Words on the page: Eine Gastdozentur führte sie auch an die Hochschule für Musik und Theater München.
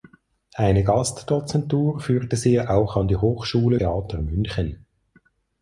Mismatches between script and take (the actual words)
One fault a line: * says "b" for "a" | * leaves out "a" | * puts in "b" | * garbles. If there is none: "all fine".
* leaves out "für Musik und"